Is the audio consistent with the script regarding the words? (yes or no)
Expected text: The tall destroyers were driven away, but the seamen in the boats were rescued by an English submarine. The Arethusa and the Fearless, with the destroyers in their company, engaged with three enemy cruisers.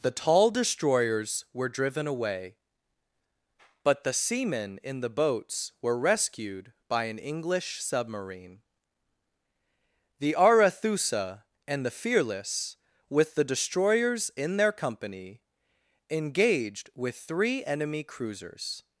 yes